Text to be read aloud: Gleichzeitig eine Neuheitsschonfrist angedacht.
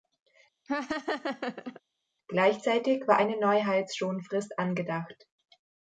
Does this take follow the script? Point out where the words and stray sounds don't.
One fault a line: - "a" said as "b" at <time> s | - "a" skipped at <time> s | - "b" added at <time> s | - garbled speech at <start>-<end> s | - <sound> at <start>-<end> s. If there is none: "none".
- laugh at 0.7-1.8 s
- "war" added at 3.1 s